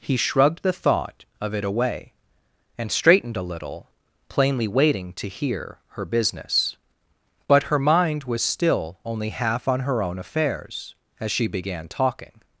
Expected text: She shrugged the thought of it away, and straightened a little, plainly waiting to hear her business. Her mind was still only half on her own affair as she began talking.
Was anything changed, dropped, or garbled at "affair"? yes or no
yes